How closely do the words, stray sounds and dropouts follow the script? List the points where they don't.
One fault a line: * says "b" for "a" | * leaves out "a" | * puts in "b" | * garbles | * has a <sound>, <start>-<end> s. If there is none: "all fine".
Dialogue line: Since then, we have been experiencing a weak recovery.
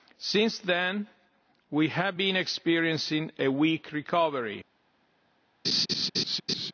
* has a laugh, 5.6-6.7 s